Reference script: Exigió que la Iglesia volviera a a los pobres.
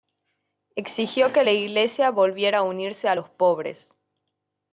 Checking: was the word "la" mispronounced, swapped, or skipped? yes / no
no